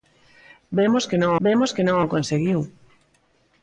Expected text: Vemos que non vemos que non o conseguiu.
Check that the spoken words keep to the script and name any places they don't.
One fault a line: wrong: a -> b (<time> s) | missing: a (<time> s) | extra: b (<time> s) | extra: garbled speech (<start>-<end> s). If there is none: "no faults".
no faults